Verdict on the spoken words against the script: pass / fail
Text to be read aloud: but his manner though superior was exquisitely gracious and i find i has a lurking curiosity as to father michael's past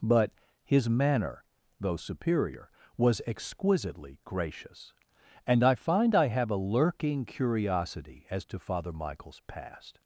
fail